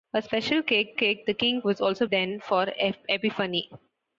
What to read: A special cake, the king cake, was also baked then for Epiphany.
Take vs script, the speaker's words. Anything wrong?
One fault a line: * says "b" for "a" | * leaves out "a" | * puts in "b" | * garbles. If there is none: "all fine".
* puts in "cake"
* leaves out "cake"
* leaves out "baked"